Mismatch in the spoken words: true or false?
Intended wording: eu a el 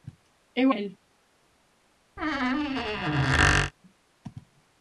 false